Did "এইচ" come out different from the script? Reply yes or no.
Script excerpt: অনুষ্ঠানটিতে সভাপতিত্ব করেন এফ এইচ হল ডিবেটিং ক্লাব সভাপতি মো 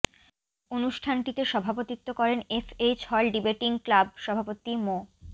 no